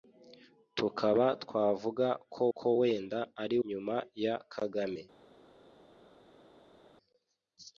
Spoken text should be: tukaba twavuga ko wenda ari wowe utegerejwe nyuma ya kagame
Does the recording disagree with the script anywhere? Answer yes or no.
yes